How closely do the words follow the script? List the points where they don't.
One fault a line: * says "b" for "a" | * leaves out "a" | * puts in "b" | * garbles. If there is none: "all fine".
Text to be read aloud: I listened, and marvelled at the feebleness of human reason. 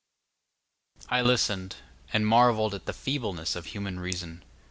all fine